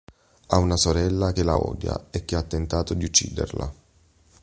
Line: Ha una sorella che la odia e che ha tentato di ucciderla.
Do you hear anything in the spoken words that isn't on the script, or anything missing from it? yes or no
no